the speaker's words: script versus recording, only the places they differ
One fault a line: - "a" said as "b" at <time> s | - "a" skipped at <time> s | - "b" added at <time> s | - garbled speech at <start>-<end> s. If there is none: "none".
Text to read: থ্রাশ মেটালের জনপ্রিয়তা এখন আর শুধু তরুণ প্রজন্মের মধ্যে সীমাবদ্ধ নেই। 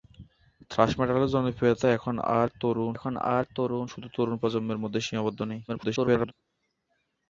- "এখন আর" added at 3.0 s
- garbled speech at 5.7-6.3 s